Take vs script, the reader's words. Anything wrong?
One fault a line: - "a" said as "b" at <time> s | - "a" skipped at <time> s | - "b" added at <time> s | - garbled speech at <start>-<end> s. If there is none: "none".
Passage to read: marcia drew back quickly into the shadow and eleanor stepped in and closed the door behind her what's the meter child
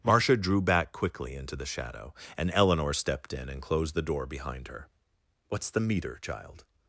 none